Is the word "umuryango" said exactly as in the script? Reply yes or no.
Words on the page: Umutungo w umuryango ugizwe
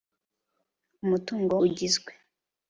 no